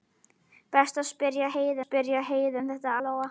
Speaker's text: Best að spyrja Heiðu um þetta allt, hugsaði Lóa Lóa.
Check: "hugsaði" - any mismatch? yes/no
yes